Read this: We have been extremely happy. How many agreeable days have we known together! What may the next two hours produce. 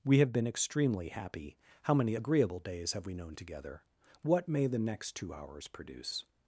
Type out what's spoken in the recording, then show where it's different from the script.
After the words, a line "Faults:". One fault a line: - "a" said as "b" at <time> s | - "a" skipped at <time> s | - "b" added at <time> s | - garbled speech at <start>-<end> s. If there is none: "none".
We have been extremely happy. How many agreeable days have we known together! What may the next two hours produce.
Faults:
none